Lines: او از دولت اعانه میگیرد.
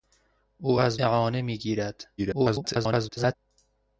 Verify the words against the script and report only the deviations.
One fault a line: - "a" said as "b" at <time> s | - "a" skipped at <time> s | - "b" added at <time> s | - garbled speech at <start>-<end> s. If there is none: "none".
- "دولت" skipped at 1.0 s
- garbled speech at 2.2-3.3 s